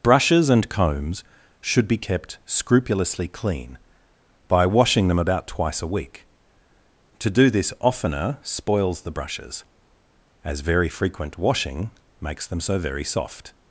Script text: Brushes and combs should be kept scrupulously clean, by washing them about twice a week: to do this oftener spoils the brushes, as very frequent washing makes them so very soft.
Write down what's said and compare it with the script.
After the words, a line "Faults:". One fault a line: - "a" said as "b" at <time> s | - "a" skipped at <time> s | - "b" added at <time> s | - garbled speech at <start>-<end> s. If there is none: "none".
Brushes and combs should be kept scrupulously clean, by washing them about twice a week: to do this oftener spoils the brushes, as very frequent washing makes them so very soft.
Faults:
none